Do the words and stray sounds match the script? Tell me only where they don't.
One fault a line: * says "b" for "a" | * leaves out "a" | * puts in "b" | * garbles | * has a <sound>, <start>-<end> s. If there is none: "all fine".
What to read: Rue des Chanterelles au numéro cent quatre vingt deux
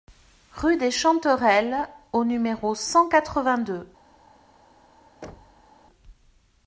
* has a thud, 5.2-5.7 s